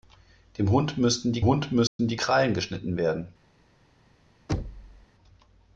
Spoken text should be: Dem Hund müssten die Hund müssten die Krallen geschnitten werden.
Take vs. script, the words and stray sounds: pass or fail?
fail